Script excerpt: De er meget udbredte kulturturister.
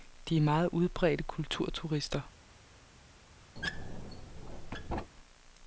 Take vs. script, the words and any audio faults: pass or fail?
fail